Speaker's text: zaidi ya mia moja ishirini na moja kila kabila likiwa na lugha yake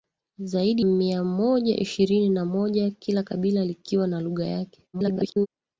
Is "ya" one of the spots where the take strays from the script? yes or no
yes